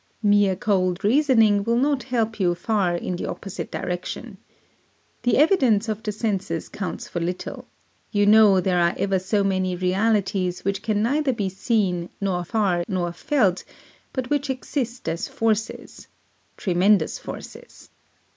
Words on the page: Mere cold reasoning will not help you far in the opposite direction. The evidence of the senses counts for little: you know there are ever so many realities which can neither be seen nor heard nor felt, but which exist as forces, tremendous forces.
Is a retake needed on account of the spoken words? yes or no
yes